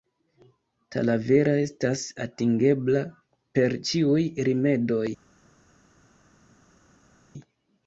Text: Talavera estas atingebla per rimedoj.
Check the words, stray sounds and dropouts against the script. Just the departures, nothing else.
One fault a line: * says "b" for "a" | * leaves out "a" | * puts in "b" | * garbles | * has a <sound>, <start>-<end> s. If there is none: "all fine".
* puts in "ĉiuj"